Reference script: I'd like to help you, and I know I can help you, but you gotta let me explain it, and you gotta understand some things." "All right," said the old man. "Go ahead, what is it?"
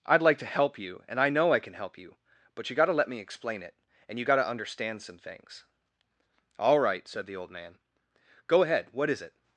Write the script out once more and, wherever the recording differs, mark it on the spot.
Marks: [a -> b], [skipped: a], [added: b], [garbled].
I'd like to help you, and I know I can help you, but you gotta let me explain it, and you gotta understand some things." "All right," said the old man. "Go ahead, what is it?"